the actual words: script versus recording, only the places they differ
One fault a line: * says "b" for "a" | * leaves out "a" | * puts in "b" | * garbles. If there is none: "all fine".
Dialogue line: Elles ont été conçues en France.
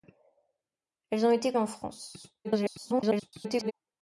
* leaves out "conçues"
* garbles